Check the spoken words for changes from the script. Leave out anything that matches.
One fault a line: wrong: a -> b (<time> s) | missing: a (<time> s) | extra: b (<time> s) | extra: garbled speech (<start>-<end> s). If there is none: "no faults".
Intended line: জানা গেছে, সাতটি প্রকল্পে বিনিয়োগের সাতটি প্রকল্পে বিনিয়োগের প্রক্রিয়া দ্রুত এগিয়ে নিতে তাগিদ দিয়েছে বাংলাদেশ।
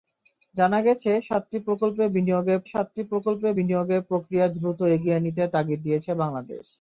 no faults